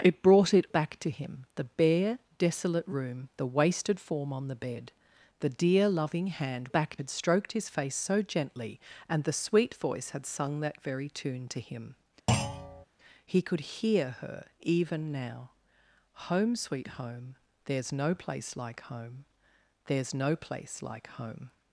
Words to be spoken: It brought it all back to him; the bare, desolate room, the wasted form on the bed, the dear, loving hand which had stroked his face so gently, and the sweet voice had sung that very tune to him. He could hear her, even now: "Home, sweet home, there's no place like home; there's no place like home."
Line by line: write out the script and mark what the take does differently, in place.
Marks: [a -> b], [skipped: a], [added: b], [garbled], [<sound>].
It brought it [skipped: all] back to him; the bare, desolate room, the wasted form on the bed, the dear, loving hand [which -> back] had stroked his face so gently, and the sweet voice had sung that very tune to him. [thud] He could hear her, even now: "Home, sweet home, there's no place like home; there's no place like home."